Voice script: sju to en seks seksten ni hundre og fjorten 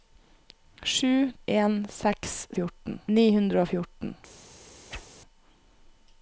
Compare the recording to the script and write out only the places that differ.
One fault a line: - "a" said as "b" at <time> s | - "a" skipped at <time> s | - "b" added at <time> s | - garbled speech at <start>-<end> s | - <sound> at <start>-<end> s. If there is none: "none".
- "to" skipped at 1.3 s
- "seksten" said as "fjorten" at 2.6 s
- whoosh at 4.9-5.1 s